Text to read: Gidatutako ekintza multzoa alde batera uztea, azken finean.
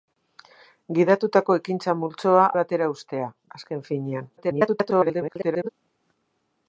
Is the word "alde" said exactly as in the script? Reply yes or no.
no